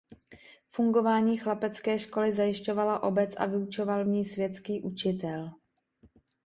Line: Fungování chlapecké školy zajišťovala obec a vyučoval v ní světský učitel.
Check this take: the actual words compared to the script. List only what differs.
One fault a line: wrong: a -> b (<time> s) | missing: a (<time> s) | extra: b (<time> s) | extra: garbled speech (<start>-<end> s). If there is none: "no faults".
no faults